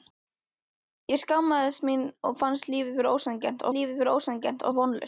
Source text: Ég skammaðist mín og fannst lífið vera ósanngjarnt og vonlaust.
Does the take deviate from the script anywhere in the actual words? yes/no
yes